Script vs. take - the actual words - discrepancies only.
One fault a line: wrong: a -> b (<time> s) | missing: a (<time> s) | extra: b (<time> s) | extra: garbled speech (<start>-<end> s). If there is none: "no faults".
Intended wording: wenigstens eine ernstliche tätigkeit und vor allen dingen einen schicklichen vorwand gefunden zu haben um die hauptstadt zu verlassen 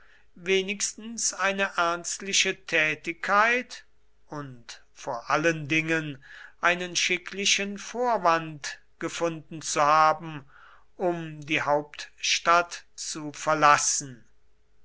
no faults